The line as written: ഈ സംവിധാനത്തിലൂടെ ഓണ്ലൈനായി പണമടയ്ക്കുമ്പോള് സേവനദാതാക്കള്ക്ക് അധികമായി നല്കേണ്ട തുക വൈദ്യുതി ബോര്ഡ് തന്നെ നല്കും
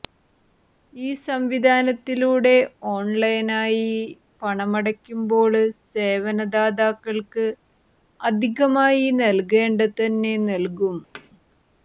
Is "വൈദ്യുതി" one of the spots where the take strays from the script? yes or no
yes